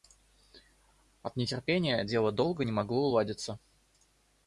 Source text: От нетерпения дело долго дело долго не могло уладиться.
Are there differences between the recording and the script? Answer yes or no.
yes